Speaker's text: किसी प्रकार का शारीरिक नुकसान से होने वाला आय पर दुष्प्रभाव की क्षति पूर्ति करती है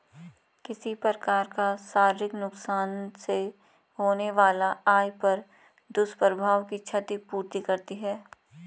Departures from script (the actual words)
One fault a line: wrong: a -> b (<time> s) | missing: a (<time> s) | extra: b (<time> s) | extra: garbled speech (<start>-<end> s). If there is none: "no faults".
no faults